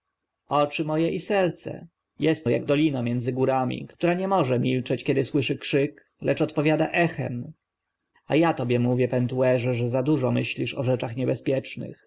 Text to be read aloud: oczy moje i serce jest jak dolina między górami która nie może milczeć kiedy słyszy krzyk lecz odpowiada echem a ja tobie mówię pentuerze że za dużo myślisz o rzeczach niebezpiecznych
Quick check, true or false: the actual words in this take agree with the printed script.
true